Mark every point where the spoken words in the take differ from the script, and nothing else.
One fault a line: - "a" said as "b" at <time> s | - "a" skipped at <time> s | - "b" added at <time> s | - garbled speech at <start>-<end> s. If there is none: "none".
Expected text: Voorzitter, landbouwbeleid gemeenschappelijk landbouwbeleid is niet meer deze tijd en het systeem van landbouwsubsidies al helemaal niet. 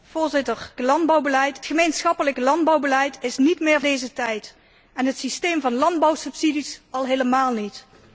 none